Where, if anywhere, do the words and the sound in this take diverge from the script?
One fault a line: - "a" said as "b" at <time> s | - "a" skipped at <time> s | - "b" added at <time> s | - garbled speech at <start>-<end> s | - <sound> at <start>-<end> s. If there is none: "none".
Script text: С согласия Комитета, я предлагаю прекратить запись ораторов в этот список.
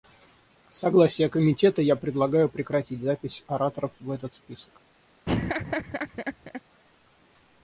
- laugh at 5.3-6.6 s